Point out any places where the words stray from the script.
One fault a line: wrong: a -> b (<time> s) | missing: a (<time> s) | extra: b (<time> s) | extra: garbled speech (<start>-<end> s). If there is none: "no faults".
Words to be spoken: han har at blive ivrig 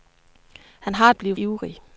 no faults